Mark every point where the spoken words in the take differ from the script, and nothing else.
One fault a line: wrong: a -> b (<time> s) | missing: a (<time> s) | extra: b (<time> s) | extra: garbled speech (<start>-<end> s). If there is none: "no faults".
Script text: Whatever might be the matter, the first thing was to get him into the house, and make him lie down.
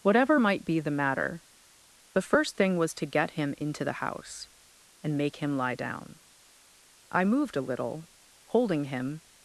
extra: I moved a little holding him (7.1 s)